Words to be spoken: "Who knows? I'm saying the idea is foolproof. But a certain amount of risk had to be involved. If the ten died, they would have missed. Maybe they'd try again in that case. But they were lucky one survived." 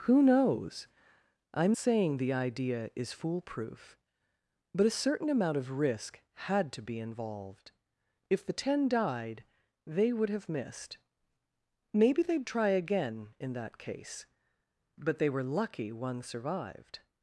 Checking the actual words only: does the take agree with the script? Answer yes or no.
yes